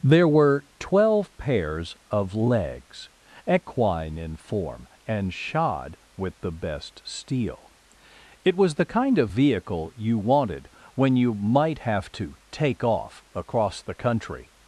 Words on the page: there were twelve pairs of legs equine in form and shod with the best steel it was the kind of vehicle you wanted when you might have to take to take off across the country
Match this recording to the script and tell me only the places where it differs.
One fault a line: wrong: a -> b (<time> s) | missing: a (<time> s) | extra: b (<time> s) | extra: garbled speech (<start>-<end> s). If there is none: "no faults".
missing: to take (12.8 s)